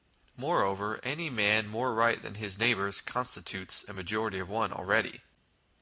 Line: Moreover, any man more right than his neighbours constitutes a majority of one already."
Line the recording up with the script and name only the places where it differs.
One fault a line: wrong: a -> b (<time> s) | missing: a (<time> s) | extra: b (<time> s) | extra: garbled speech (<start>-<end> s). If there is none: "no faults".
no faults